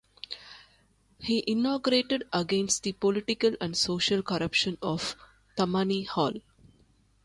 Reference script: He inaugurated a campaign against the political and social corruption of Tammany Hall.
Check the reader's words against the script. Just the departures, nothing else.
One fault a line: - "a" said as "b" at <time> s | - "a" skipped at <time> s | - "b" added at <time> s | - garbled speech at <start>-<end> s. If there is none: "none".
- "a campaign" skipped at 2.2 s